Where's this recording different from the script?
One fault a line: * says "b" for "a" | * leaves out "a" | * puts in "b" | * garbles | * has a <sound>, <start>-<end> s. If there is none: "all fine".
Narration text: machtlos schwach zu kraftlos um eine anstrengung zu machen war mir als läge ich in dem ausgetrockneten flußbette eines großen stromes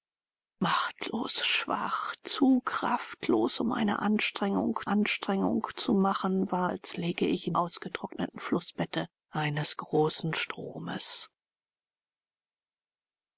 * puts in "anstrengung"
* leaves out "mir"
* leaves out "dem"